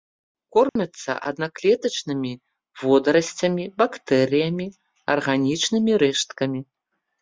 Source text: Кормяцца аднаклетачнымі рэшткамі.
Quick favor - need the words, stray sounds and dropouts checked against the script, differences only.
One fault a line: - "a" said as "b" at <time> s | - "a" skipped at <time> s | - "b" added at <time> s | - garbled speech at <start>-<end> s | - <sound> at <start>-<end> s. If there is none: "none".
- dropout at 0.7-0.8 s
- "водарасцямі бактэрыямі арганічнымі" added at 2.9 s